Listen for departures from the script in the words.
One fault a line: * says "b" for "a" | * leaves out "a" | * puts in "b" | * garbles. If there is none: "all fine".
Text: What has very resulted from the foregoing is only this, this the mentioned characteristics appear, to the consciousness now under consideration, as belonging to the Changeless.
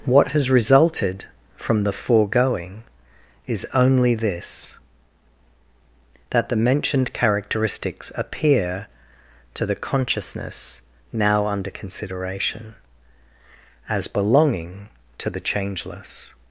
* leaves out "very"
* says "that" for "this"